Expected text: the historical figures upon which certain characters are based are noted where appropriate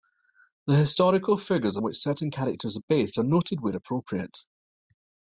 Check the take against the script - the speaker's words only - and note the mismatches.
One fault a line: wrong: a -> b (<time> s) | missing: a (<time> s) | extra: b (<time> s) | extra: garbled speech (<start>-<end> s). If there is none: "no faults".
missing: upon (1.8 s)